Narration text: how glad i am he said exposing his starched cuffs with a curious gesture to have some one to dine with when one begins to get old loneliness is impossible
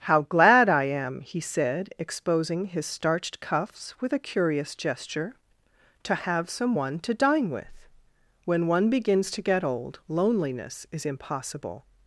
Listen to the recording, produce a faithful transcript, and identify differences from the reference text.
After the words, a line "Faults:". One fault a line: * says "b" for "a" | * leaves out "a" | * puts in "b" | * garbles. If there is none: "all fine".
how glad i am he said exposing his starched cuffs with a curious gesture to have some one to dine with when one begins to get old loneliness is impossible
Faults:
all fine